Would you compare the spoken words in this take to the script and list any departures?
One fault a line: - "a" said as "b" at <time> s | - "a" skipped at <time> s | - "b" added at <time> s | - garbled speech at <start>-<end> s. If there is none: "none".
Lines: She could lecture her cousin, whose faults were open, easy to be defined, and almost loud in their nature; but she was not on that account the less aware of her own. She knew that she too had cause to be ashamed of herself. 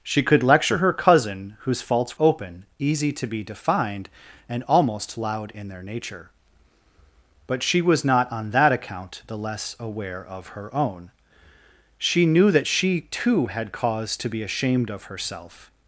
- "were" skipped at 2.2 s